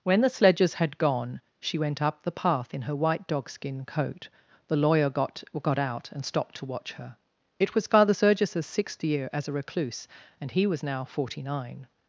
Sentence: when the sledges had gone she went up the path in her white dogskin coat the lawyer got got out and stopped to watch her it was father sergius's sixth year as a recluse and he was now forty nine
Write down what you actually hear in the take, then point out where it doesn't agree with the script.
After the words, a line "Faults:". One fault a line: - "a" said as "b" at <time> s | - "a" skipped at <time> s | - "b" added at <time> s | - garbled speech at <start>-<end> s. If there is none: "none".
when the sledges had gone she went up the path in her white dogskin coat the lawyer got got out and stopped to watch her it was father sergius's sixth year as a recluse and he was now forty nine
Faults:
none